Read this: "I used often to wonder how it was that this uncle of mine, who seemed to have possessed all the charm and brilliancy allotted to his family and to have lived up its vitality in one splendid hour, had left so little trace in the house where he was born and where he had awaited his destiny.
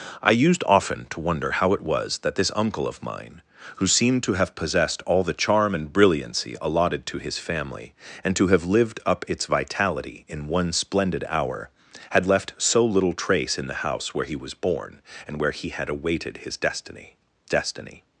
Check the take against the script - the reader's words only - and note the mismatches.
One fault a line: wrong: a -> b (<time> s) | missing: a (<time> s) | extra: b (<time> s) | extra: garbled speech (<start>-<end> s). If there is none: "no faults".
extra: destiny (17.5 s)